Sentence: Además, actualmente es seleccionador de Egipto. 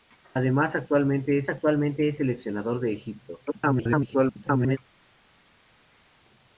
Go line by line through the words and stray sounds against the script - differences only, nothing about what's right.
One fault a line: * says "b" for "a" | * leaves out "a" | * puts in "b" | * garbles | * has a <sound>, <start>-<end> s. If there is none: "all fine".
* puts in "actualmente es"
* garbles